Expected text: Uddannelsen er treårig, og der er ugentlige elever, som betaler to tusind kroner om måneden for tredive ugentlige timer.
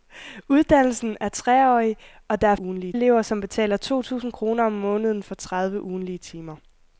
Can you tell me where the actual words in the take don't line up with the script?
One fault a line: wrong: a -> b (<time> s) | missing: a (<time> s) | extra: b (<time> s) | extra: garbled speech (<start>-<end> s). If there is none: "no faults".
no faults